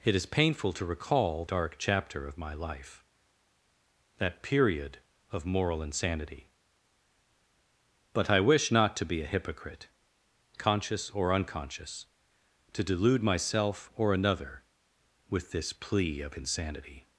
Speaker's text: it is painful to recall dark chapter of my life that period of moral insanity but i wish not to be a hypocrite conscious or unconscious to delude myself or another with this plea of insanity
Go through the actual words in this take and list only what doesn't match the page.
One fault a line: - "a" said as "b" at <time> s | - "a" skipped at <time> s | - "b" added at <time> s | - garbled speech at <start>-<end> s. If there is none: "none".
none